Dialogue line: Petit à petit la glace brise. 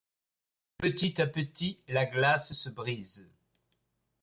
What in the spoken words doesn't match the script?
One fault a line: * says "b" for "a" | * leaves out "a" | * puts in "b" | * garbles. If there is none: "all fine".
* puts in "se"